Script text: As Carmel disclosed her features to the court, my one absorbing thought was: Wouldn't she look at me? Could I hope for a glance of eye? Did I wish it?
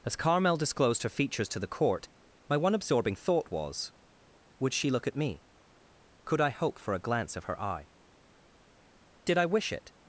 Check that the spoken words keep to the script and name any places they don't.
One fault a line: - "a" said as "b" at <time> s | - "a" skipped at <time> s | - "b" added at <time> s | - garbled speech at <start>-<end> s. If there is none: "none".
- "Wouldn't" said as "Would" at 4.6 s
- "her" added at 7.4 s